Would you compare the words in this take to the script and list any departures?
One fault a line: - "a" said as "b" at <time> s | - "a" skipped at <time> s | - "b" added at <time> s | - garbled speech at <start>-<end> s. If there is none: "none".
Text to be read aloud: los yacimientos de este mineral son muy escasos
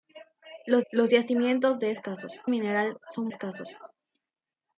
- "los" added at 0.9 s
- "este" said as "escasos" at 1.9 s
- "muy" skipped at 3.3 s